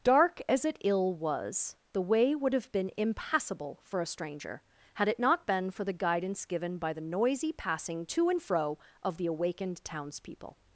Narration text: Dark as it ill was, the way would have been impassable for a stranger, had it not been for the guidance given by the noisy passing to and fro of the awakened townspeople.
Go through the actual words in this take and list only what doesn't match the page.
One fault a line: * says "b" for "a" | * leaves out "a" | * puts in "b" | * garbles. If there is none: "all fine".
all fine